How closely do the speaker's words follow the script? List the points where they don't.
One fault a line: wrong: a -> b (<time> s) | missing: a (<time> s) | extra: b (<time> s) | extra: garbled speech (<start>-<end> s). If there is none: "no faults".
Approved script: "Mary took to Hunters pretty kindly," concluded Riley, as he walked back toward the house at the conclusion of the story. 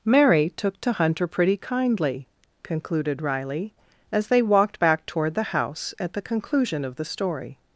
wrong: Hunters -> Hunter (0.9 s)
wrong: he -> they (4.3 s)